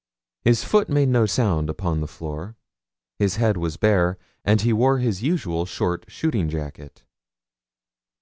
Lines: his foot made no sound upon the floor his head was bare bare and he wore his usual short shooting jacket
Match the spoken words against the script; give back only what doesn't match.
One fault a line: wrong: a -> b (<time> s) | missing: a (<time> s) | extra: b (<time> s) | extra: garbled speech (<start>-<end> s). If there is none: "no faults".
missing: bare (4.2 s)